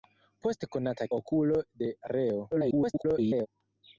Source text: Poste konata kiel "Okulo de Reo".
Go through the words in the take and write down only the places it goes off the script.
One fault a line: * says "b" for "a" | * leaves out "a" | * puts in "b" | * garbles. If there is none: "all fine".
* leaves out "kiel"
* garbles